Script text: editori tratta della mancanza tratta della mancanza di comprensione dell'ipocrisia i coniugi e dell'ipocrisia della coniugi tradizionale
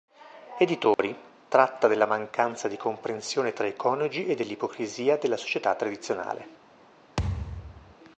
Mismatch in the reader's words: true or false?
true